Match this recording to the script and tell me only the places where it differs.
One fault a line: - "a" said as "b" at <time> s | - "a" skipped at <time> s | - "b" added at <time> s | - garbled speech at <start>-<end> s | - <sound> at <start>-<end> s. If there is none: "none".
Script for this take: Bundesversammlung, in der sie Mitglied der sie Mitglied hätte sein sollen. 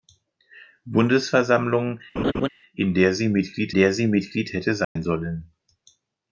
- laugh at 2.2-2.5 s
- dropout at 4.8-5.0 s